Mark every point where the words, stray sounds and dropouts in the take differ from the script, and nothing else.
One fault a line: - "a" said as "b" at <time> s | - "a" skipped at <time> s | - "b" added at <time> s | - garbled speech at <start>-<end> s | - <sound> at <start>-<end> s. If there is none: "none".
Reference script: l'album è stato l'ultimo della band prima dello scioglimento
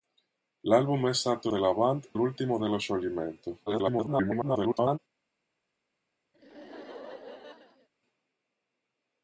- "l'ultimo" skipped at 1.5 s
- "prima" said as "l'ultimo" at 2.2 s
- garbled speech at 3.7-5.0 s
- laugh at 6.3-7.9 s